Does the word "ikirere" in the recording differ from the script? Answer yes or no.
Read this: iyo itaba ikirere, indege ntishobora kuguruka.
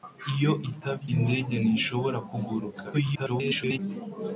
yes